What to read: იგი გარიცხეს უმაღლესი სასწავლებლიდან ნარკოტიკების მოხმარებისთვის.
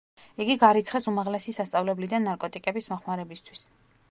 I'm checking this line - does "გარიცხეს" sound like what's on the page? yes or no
yes